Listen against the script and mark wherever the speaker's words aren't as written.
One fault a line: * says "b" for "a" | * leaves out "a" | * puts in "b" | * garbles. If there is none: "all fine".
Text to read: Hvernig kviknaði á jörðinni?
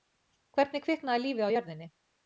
* puts in "lífið"